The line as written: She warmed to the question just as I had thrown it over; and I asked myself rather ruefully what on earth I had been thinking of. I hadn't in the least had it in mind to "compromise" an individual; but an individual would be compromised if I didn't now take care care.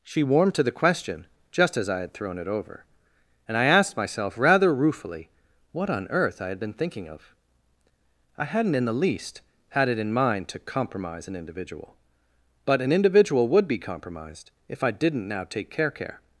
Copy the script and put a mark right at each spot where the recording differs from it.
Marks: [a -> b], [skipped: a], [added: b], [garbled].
She warmed to the question just as I had thrown it over; and I asked myself rather ruefully what on earth I had been thinking of. I hadn't in the least had it in mind to "compromise" an individual; but an individual would be compromised if I didn't now take care care.